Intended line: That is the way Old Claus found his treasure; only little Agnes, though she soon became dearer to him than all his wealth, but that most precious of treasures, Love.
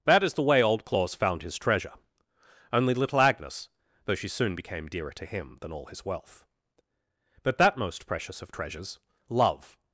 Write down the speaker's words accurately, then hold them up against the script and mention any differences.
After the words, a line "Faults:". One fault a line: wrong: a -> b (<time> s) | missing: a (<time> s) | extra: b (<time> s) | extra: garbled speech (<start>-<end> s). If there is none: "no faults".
That is the way Old Claus found his treasure; only little Agnes, though she soon became dearer to him than all his wealth, but that most precious of treasures, Love.
Faults:
no faults